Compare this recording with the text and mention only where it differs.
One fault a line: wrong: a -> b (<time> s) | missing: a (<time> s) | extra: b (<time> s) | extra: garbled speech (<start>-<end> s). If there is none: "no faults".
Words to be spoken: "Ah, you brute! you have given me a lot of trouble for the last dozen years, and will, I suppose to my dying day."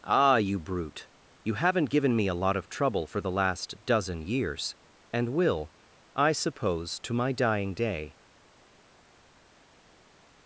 wrong: have -> haven't (1.6 s)